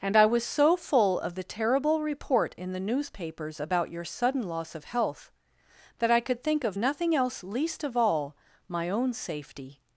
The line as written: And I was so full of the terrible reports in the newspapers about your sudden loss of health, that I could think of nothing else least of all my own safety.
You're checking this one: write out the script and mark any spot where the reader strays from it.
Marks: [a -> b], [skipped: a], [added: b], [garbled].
And I was so full of the terrible [reports -> report] in the newspapers about your sudden loss of health, that I could think of nothing else least of all my own safety.